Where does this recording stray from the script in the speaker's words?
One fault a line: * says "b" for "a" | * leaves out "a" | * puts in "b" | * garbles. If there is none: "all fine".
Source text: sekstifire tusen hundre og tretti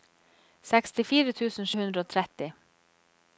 all fine